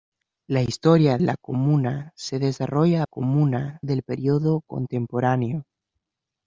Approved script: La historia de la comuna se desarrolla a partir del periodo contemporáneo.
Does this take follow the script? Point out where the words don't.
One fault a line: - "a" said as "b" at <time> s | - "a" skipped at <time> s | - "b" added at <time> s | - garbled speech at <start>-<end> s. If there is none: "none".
- "de" skipped at 1.2 s
- "partir" said as "comuna" at 3.0 s